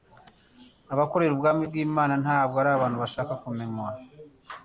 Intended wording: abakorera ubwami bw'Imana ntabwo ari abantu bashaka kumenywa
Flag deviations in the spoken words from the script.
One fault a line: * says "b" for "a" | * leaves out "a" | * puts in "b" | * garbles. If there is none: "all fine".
all fine